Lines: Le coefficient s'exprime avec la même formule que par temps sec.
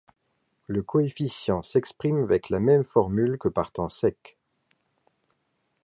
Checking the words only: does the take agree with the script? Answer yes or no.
yes